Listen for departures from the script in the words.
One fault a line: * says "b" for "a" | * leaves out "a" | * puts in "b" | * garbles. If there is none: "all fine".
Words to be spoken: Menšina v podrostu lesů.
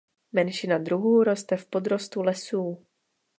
* puts in "druhů roste"